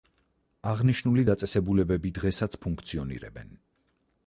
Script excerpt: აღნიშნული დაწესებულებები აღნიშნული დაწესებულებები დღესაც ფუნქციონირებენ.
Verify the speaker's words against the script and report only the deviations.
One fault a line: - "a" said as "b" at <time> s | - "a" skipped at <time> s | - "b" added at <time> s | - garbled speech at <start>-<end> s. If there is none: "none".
- "აღნიშნული დაწესებულებები" skipped at 2.1 s